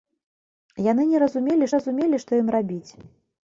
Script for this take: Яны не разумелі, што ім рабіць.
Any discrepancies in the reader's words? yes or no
yes